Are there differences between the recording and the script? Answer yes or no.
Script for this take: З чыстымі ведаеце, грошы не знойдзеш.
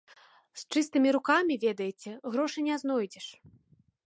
yes